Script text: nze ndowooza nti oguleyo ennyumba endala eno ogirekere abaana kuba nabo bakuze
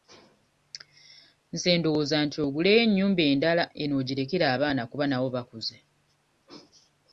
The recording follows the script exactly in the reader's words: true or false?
true